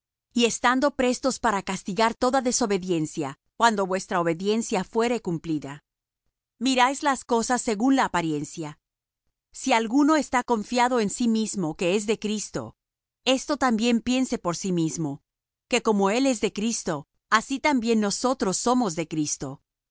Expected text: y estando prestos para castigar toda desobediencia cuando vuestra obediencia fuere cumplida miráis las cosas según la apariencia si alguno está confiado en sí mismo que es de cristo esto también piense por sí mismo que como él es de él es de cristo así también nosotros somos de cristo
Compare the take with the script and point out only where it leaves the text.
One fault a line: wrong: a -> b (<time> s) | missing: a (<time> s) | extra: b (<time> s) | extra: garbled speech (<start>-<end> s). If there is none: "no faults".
missing: él es de (16.5 s)